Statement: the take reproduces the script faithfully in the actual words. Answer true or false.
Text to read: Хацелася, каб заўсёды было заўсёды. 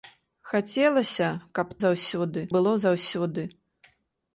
true